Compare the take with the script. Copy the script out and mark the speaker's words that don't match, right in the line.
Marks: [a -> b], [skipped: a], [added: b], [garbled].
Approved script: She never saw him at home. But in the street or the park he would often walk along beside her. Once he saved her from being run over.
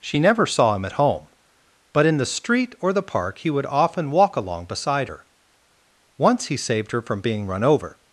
She never saw him at home. But in the street or the park he would often walk along beside her. Once he saved her from being run over.